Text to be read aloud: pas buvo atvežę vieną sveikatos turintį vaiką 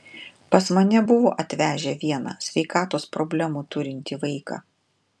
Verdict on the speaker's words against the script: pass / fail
fail